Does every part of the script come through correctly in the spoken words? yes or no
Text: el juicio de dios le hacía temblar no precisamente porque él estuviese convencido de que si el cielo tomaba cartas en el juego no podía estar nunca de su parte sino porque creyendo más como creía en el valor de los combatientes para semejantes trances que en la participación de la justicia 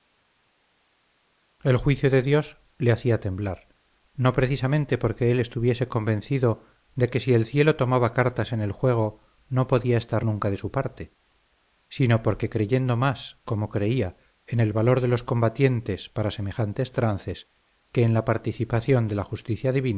yes